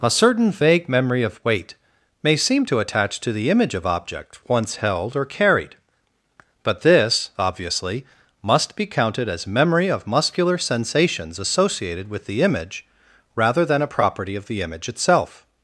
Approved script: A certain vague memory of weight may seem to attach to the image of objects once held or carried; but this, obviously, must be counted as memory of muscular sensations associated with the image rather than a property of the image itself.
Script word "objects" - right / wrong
wrong